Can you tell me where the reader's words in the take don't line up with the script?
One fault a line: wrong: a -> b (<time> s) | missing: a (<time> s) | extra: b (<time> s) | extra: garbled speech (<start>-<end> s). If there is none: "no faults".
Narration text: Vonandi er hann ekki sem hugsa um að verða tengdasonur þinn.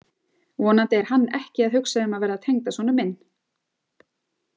wrong: sem -> að (1.7 s)
wrong: þinn -> minn (3.0 s)